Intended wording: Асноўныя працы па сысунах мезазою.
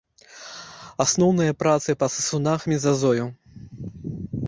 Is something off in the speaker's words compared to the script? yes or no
no